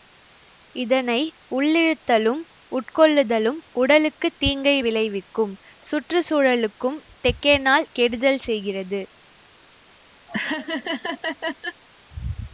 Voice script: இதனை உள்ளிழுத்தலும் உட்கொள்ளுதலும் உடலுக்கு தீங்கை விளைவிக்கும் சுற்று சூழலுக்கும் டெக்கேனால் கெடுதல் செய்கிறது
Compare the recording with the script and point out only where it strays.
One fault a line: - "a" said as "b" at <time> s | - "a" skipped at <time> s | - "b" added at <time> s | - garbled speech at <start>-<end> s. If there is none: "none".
none